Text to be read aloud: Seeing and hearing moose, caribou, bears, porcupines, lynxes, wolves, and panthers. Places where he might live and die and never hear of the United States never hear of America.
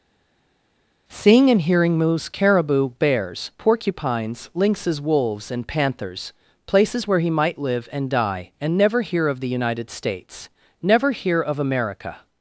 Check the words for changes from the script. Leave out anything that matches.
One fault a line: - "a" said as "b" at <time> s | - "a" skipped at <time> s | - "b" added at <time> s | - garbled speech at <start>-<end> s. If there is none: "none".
none